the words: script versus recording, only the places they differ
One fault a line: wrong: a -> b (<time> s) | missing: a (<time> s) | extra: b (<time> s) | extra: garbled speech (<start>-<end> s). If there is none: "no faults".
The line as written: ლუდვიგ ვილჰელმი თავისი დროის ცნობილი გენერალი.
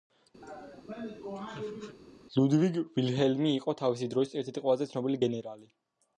extra: იყო (3.6 s)
extra: ერთ ერთი ყველაზე (4.4 s)